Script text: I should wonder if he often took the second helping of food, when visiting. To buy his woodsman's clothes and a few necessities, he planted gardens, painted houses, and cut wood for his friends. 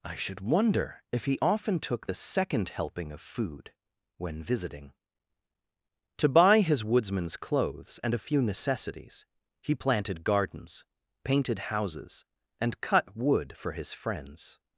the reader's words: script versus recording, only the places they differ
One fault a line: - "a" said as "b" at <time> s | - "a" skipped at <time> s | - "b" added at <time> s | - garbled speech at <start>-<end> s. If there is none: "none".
none